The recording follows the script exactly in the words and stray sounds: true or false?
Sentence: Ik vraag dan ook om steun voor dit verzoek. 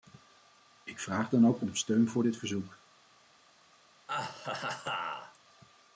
false